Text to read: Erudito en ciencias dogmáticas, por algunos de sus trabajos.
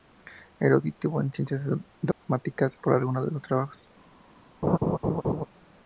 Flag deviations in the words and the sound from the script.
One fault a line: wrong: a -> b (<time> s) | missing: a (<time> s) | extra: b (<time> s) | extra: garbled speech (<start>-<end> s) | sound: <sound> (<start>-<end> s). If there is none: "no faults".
sound: dropout (2.1-2.2 s)
sound: laugh (4.6-5.5 s)